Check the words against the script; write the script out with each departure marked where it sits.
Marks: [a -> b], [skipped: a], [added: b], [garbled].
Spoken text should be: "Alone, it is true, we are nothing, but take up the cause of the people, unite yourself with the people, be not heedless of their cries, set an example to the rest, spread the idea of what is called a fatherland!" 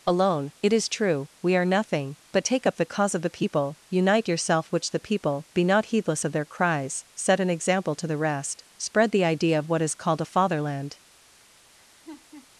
"Alone, it is true, we are nothing, but take up the cause of the people, unite yourself [with -> which] the people, be not heedless of their cries, set an example to the rest, spread the idea of what is called a fatherland!"